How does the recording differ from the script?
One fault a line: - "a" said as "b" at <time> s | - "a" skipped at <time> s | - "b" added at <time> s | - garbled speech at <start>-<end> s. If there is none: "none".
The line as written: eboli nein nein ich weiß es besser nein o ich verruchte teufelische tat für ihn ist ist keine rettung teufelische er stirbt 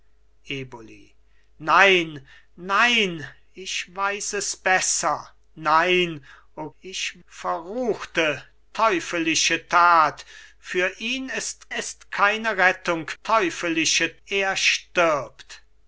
none